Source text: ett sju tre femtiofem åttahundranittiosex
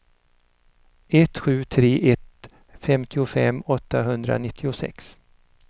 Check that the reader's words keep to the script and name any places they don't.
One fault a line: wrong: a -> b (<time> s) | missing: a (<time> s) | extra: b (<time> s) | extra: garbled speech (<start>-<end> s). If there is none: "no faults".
extra: ett (2.1 s)